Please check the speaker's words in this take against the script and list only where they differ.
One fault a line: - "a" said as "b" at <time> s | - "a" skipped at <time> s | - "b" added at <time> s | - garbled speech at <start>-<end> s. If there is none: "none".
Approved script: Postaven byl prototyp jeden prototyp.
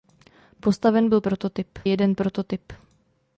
none